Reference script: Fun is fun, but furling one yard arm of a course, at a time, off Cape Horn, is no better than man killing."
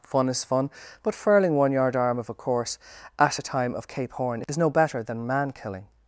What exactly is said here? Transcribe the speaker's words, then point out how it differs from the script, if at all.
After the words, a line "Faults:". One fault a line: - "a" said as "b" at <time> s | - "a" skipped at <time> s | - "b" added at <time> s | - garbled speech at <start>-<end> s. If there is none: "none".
Fun is fun, but furling one yard arm of a course, at a time, of Cape Horn, is no better than man killing."
Faults:
- "off" said as "of" at 3.7 s